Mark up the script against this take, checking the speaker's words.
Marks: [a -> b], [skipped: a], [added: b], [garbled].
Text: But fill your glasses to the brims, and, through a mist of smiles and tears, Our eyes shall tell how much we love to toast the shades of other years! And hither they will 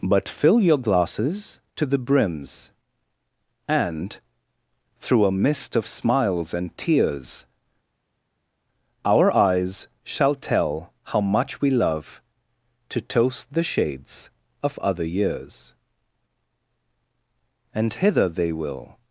But fill your glasses to the brims, and, through a mist of smiles and tears, Our eyes shall tell how much we love to toast the shades of other years! And hither they will